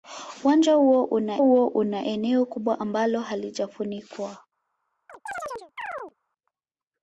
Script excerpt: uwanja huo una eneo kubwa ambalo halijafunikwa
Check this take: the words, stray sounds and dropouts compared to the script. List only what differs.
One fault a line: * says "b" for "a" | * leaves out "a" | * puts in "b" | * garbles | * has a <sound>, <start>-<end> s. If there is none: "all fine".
* puts in "huo una"
* has a chirp, 5.1-6.1 s